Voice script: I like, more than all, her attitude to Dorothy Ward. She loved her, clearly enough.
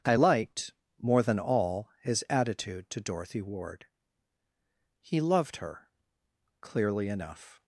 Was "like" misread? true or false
true